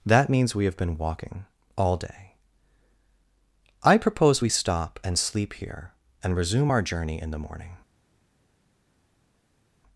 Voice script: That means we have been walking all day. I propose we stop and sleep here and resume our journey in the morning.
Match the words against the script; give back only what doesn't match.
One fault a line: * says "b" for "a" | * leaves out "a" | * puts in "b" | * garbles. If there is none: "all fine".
all fine